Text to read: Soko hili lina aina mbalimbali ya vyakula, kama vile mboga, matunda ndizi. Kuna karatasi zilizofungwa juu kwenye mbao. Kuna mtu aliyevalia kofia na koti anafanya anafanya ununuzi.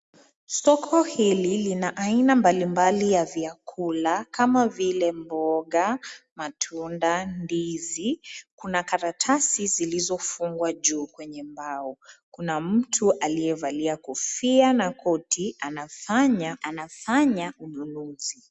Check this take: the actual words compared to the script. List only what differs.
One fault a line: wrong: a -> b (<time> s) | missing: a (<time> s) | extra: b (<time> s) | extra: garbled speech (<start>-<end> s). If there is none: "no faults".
no faults